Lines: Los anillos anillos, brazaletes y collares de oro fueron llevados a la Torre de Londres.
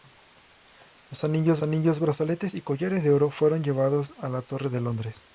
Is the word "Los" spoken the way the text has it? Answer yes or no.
yes